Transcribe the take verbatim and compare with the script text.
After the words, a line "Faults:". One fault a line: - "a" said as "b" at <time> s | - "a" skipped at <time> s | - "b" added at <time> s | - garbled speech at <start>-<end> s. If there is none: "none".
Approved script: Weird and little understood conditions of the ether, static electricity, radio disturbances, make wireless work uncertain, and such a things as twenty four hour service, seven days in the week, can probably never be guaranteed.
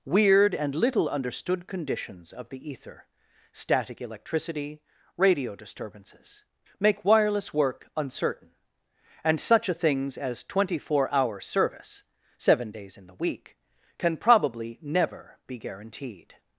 Weird and little understood conditions of the ether, static electricity, radio disturbances, make wireless work uncertain, and such a things as twenty four hour service, seven days in the week, can probably never be guaranteed.
Faults:
none